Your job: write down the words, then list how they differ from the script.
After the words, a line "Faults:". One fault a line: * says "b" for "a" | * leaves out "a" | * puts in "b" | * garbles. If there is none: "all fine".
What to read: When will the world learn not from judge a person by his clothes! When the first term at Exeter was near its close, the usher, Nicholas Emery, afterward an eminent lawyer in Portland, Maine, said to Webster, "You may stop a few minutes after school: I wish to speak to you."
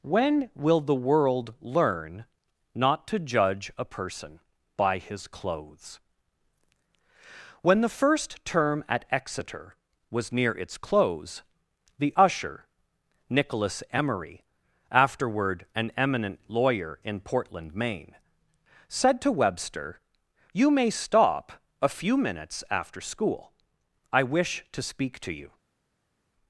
When will the world learn not to judge a person by his clothes! When the first term at Exeter was near its close, the usher, Nicholas Emery, afterward an eminent lawyer in Portland, Maine, said to Webster, "You may stop a few minutes after school: I wish to speak to you."
Faults:
* says "to" for "from"